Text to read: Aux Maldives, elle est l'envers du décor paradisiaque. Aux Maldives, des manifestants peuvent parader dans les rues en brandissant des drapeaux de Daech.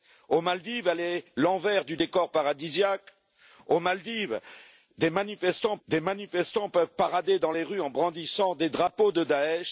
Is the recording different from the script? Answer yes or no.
yes